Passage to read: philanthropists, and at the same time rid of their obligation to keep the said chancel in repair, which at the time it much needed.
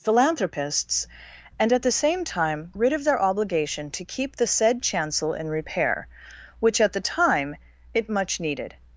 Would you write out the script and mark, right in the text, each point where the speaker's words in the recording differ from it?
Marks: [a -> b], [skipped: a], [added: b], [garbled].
philanthropists, and at the same time rid of their obligation to keep the said chancel in repair, which at the time it much needed.